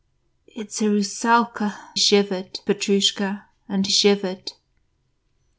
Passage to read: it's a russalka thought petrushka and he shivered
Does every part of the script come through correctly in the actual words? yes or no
no